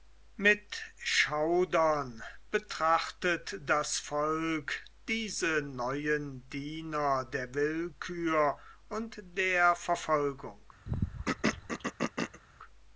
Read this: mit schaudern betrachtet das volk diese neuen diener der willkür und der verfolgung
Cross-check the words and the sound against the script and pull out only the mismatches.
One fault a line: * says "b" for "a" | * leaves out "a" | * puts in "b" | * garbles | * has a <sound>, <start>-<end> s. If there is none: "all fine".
* has a throat clearing, 10.8-12.4 s